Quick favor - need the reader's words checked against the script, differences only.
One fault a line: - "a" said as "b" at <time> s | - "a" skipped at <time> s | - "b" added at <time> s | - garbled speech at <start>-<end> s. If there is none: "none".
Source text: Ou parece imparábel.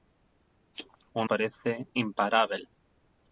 none